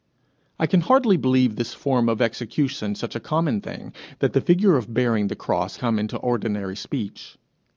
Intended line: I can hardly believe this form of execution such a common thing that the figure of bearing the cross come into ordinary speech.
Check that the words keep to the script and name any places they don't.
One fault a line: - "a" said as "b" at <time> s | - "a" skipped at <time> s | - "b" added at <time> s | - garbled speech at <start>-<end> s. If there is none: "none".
none